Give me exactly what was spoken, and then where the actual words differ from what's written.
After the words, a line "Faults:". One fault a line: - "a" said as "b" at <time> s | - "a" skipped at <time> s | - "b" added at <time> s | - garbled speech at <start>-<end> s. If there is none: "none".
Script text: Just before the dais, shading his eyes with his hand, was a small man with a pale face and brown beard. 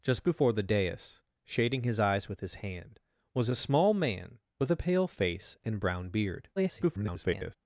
Just before the dais, shading his eyes with his hand, was a small man with a pale face and brown beard. [garbled]
Faults:
- garbled speech at 6.6-7.6 s